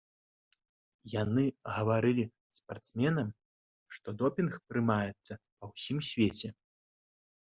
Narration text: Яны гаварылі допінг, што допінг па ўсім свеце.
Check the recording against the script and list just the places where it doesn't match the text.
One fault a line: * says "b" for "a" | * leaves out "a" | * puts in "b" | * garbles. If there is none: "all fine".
* says "спартсменам" for "допінг"
* puts in "прымаецца"